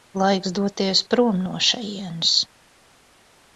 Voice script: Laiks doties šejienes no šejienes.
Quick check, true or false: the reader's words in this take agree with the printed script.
false